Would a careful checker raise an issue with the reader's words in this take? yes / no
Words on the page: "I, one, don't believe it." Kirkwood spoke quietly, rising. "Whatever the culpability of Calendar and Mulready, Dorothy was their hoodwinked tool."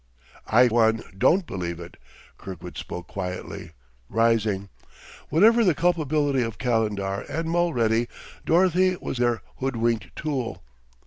no